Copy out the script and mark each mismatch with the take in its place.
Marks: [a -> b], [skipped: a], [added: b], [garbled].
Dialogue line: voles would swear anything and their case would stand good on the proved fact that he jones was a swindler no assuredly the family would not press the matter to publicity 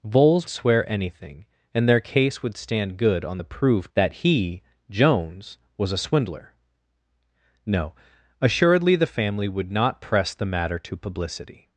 voles [skipped: would] swear anything and their case would stand good on the proved [skipped: fact] that he jones was a swindler no assuredly the family would not press the matter to publicity